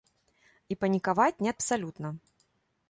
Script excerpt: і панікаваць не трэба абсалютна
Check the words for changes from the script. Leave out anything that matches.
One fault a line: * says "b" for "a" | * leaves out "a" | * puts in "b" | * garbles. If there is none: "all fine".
* leaves out "трэба"